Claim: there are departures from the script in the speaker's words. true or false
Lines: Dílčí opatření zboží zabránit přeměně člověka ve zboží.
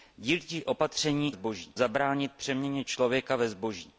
false